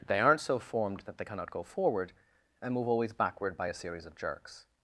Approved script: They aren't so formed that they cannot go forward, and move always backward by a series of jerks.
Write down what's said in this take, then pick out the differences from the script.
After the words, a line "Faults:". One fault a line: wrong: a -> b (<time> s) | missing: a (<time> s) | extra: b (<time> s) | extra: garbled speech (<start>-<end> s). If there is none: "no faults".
They aren't so formed that they cannot go forward, and move always backward by a series of jerks.
Faults:
no faults